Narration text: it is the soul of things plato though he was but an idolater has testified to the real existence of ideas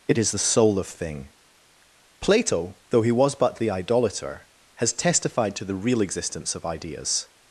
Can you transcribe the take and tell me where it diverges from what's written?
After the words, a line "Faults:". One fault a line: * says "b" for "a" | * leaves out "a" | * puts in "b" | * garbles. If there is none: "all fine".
it is the soul of thing plato though he was but the idolater has testified to the real existence of ideas
Faults:
* says "thing" for "things"
* says "the" for "an"